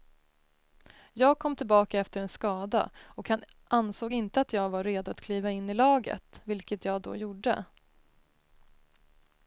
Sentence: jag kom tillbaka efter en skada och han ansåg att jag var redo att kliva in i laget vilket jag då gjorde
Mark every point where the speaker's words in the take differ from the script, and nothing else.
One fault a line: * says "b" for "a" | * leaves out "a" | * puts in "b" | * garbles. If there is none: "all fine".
* puts in "inte"